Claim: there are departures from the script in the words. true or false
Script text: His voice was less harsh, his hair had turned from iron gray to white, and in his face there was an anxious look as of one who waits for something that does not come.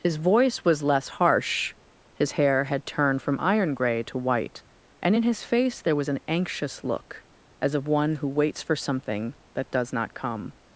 false